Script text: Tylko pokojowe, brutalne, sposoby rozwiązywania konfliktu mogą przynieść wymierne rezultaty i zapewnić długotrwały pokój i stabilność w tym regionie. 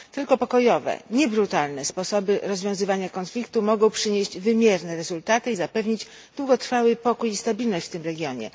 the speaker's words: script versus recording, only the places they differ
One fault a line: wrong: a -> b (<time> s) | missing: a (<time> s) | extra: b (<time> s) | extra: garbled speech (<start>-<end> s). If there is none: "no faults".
extra: nie (1.1 s)